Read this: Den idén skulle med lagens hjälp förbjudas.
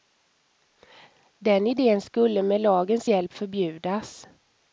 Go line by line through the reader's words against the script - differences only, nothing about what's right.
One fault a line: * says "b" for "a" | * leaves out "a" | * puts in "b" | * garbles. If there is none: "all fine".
all fine